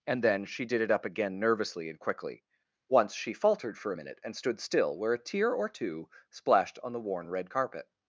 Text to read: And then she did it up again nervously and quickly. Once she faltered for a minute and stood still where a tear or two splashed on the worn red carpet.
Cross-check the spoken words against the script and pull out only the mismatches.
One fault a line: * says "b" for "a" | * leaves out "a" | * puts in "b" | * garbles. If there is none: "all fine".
all fine